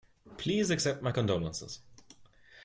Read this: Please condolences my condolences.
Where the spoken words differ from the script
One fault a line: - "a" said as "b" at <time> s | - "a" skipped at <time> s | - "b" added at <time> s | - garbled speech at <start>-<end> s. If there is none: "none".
- "condolences" said as "accept" at 0.7 s